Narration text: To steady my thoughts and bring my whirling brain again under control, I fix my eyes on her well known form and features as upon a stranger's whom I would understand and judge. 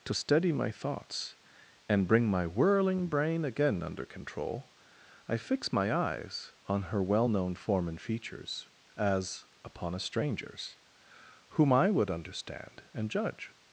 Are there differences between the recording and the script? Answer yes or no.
no